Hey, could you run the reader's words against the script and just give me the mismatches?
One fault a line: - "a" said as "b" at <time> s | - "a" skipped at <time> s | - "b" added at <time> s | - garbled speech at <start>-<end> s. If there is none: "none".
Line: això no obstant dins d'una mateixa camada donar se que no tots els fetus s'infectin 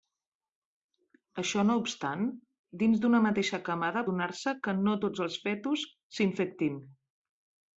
none